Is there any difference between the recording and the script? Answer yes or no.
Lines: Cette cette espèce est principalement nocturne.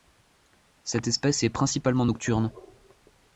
yes